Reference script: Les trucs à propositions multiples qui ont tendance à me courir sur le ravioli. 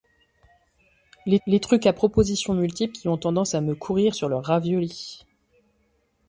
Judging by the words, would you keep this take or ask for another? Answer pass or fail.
fail